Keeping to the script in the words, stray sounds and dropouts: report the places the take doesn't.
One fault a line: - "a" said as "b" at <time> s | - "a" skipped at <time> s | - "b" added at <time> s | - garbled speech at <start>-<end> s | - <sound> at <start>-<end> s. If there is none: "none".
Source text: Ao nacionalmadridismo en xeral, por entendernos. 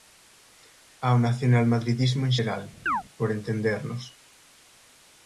- chirp at 2.9-3.0 s